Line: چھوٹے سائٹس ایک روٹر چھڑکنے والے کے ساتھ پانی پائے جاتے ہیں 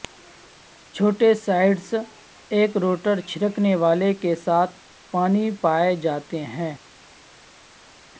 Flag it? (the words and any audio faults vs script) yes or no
no